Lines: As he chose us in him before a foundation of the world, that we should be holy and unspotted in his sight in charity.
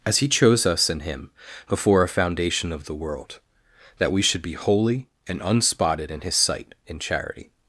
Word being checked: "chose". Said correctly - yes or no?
yes